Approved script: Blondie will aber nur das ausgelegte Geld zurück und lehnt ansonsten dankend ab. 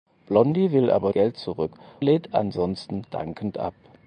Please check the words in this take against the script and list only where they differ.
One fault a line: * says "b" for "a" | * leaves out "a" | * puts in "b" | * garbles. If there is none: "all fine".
* leaves out "nur das ausgelegte"
* leaves out "und"